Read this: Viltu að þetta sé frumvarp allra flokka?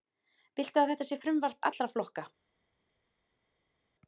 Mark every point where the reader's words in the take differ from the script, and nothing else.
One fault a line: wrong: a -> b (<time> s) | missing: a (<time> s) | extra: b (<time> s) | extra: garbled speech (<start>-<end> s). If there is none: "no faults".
no faults